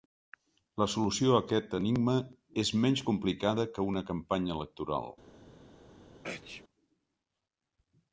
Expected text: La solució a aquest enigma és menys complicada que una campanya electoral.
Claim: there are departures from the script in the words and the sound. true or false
true